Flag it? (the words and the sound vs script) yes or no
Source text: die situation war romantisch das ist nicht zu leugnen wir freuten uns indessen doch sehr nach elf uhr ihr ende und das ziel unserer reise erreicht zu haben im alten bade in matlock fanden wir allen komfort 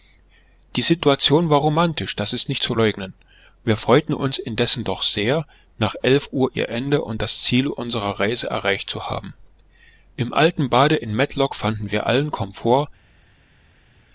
no